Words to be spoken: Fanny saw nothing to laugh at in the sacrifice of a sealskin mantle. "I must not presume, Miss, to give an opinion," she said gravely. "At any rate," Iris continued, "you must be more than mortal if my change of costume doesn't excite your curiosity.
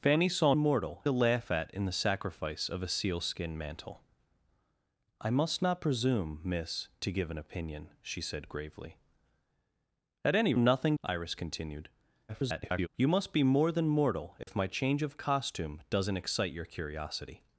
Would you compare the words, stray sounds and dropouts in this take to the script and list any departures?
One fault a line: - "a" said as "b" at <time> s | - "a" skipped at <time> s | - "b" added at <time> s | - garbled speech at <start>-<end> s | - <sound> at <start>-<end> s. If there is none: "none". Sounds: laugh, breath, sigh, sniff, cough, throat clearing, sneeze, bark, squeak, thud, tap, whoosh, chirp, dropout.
- "nothing" said as "mortal" at 0.6 s
- "rate" said as "nothing" at 10.6 s
- garbled speech at 12.3-12.9 s
- dropout at 14.4-14.5 s